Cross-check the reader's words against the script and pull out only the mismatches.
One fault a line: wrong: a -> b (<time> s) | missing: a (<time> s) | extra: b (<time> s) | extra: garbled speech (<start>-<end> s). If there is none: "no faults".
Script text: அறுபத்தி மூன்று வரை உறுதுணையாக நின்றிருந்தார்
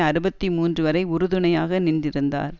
no faults